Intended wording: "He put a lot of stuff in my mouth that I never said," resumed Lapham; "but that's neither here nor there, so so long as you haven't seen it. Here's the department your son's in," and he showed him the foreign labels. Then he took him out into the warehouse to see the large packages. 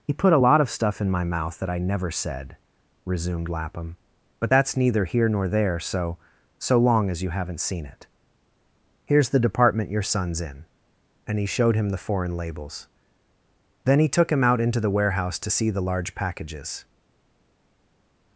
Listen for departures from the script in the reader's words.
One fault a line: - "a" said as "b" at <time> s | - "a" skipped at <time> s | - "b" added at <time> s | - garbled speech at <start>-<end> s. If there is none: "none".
none